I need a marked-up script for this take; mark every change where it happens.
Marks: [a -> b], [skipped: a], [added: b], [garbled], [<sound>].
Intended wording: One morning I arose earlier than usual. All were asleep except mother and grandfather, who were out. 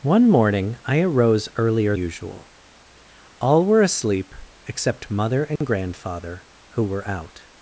One morning I arose earlier [skipped: than] usual. All were asleep except mother and [dropout] grandfather, who were out.